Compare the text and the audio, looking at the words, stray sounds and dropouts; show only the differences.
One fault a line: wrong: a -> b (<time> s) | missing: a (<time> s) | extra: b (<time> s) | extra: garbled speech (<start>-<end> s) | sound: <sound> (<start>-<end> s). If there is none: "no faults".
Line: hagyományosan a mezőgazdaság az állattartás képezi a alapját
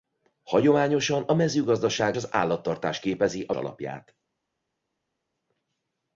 no faults